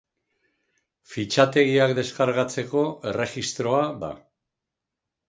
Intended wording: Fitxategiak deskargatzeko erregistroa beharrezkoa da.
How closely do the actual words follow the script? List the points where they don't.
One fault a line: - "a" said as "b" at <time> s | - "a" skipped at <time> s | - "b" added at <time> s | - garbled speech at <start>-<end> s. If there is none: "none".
- "beharrezkoa" skipped at 3.8 s